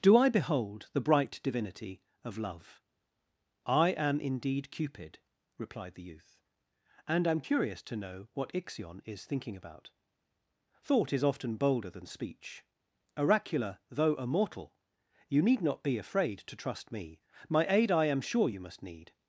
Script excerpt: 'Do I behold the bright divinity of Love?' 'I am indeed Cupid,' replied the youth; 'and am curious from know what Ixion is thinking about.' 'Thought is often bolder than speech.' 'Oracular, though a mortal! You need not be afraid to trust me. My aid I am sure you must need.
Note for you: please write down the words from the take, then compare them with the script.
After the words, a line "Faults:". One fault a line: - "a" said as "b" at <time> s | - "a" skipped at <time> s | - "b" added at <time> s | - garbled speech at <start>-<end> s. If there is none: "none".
'Do I behold the bright divinity of Love?' 'I am indeed Cupid,' replied the youth; 'and am curious to know what Ixion is thinking about.' 'Thought is often bolder than speech.' 'Oracular, though a mortal! You need not be afraid to trust me. My aid I am sure you must need.
Faults:
- "from" said as "to" at 7.8 s